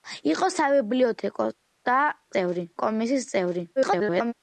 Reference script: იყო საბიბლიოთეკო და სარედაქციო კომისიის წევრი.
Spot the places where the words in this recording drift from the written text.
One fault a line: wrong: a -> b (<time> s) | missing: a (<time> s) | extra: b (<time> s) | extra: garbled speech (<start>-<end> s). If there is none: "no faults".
wrong: სარედაქციო -> წევრი (2.3 s)
extra: garbled speech (3.8-4.3 s)